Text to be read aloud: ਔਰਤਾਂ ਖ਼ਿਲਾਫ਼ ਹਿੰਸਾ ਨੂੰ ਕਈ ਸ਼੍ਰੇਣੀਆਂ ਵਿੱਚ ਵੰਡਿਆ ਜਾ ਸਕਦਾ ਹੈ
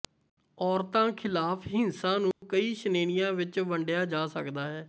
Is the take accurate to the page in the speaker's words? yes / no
yes